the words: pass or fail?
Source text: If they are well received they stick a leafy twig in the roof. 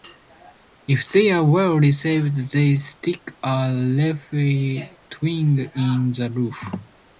pass